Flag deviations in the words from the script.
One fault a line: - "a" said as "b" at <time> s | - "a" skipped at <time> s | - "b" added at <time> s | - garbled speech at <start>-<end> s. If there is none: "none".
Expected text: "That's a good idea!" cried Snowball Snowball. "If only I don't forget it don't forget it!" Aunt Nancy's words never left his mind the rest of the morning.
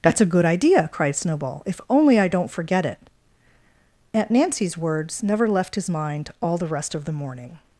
- "Snowball" skipped at 1.6 s
- "don't forget it" skipped at 3.0 s
- "all" added at 6.4 s